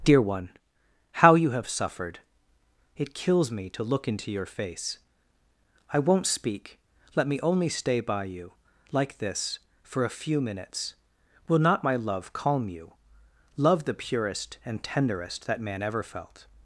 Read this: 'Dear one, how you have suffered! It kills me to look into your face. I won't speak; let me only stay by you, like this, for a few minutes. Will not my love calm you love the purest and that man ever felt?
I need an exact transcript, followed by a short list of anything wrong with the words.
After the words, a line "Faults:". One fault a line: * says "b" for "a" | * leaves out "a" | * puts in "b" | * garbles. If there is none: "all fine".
'Dear one, how you have suffered! It kills me to look into your face. I won't speak; let me only stay by you, like this, for a few minutes. Will not my love calm you love the purest and tenderest that man ever felt?
Faults:
* puts in "tenderest"